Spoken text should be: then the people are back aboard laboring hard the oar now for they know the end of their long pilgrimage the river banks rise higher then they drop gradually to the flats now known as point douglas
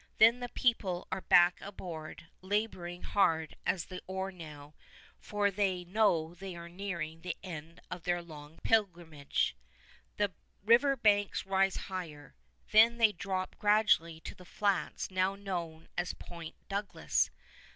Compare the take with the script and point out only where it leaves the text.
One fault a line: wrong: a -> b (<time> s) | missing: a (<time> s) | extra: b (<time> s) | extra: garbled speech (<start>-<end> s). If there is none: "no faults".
extra: at (3.7 s)
extra: they are nearing (6.3 s)